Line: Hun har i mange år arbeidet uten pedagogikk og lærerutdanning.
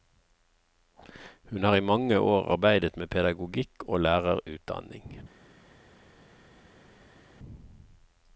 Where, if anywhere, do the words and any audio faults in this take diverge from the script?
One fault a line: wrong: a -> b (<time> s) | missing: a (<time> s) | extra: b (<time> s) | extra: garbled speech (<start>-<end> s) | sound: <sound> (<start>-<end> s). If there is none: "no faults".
wrong: uten -> med (3.0 s)